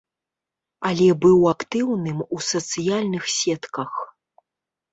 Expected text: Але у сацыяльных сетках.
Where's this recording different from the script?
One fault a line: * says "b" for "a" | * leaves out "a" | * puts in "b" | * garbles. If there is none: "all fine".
* puts in "быў актыўным"